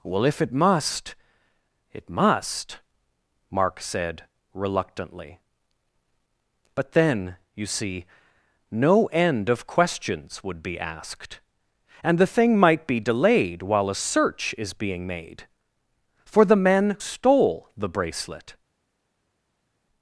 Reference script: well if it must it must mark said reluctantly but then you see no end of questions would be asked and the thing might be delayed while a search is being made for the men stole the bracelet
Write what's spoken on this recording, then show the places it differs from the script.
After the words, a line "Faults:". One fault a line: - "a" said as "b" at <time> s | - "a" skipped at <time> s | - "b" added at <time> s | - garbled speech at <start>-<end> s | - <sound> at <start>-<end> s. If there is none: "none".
well if it must it must mark said reluctantly but then you see no end of questions would be asked and the thing might be delayed while a search is being made for the men stole the bracelet
Faults:
none